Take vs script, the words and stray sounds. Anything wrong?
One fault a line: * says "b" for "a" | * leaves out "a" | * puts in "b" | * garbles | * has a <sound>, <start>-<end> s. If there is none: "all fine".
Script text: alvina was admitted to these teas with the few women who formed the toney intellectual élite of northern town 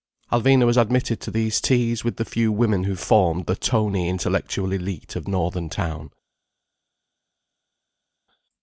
all fine